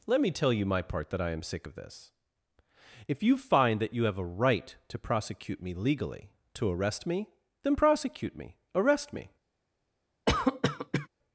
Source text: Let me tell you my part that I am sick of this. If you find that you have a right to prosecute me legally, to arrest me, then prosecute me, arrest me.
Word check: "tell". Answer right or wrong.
right